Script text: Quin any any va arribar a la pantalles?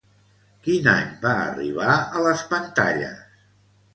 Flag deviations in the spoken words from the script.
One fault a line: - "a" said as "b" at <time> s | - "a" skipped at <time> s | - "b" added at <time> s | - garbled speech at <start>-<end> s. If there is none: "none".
- "any" skipped at 1.1 s
- "la" said as "les" at 2.3 s